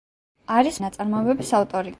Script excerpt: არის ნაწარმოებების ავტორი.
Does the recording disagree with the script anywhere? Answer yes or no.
no